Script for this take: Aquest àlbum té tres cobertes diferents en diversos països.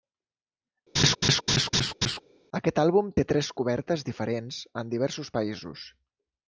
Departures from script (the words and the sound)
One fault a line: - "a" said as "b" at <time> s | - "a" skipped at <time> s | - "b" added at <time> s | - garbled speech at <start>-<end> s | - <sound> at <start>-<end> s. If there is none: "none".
- laugh at 0.9-2.2 s